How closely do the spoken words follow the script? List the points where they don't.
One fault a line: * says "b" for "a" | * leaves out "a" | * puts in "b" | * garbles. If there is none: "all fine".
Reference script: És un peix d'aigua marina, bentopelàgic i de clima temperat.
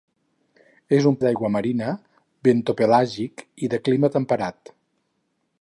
* leaves out "peix"